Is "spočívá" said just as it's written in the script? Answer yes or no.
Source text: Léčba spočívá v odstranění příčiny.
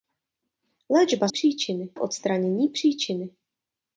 no